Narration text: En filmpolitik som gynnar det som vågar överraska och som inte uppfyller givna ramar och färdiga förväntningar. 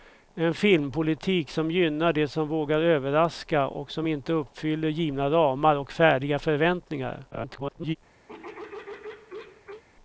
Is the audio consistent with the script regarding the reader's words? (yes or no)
no